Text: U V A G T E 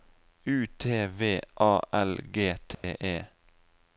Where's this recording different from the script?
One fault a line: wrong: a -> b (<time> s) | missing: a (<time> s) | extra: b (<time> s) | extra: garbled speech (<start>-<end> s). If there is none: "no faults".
extra: T (0.8 s)
extra: L (1.9 s)